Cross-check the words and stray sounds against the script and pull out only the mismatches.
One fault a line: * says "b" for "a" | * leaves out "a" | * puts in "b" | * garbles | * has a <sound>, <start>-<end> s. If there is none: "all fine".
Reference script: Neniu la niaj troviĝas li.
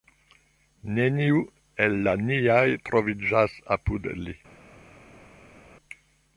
* puts in "el"
* puts in "apud"